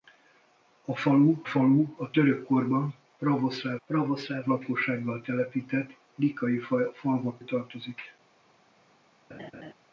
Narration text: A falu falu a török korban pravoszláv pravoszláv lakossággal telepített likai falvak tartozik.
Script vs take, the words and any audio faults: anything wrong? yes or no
yes